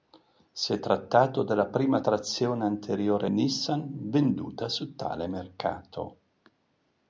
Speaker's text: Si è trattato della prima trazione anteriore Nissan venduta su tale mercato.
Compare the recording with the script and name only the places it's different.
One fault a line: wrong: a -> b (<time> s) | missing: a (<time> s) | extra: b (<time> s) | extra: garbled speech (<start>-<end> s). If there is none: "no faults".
no faults